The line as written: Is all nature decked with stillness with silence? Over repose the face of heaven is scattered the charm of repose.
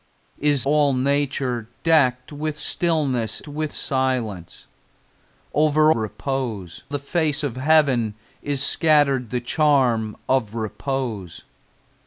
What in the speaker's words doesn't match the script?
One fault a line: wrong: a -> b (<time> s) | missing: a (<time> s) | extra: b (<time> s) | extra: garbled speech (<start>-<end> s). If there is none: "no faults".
no faults